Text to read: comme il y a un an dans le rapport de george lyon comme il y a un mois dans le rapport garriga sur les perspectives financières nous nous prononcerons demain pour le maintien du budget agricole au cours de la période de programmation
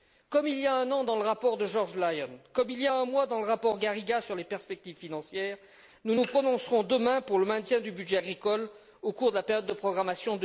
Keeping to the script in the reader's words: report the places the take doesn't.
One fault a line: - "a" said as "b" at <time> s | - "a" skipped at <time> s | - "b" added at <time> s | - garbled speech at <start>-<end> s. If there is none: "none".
none